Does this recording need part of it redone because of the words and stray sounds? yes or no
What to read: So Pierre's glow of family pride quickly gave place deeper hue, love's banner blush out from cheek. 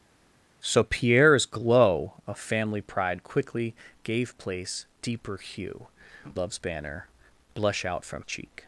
no